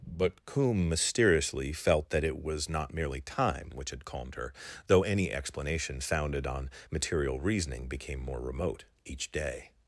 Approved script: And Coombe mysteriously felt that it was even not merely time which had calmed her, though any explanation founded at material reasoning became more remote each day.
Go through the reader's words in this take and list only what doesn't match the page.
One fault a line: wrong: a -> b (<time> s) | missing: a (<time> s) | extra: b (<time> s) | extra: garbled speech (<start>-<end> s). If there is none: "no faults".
wrong: And -> But (0.1 s)
missing: even (2.7 s)
wrong: at -> on (6.5 s)